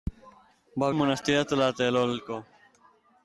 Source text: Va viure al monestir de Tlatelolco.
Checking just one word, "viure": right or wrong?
wrong